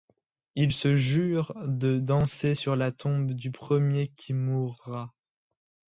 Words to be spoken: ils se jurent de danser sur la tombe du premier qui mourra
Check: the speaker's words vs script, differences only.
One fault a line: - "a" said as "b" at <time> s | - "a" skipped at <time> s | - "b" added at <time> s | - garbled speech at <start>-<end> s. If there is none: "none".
none